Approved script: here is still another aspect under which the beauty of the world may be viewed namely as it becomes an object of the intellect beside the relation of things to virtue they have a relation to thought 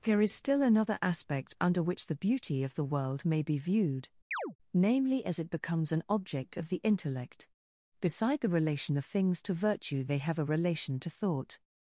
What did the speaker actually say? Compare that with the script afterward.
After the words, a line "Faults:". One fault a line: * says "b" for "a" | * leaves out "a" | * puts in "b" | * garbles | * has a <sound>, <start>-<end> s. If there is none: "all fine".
here is still another aspect under which the beauty of the world may be viewed namely as it becomes an object of the intellect beside the relation of things to virtue they have a relation to thought
Faults:
* has a chirp, 4.3-4.6 s